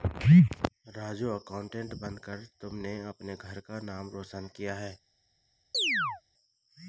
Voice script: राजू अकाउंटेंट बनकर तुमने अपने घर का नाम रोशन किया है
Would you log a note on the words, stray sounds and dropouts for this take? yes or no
yes